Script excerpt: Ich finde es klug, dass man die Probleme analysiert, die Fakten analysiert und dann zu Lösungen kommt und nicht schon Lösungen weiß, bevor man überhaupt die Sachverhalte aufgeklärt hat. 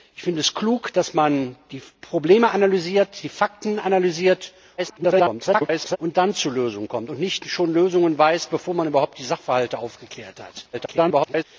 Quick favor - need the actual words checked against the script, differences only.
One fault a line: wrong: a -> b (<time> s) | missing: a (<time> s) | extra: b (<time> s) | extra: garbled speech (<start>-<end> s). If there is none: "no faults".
extra: garbled speech (4.8-6.0 s)
extra: garbled speech (10.7-11.4 s)